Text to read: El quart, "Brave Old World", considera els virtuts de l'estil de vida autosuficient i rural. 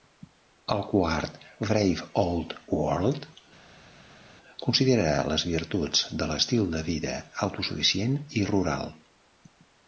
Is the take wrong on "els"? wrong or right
wrong